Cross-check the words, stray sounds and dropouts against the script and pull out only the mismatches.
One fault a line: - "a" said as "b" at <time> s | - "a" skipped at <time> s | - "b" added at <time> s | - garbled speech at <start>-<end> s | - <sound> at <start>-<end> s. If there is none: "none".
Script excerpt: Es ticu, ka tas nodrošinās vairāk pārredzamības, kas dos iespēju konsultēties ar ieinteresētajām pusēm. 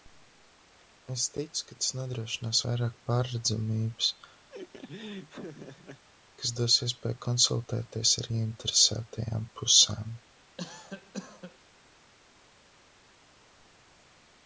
- laugh at 4.5-6.0 s
- cough at 10.6-11.6 s